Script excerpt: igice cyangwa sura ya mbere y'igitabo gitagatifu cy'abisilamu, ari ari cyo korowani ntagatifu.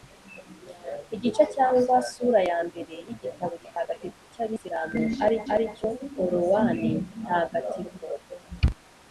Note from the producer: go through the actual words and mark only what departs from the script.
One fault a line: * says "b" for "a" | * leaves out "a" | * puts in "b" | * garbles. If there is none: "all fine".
all fine